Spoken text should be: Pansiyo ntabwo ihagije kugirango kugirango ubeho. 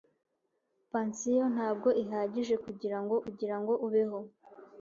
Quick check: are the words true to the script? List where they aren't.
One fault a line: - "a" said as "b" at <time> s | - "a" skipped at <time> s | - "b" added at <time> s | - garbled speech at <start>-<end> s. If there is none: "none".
none